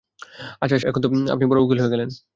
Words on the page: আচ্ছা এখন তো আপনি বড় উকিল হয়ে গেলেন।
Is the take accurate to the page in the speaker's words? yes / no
yes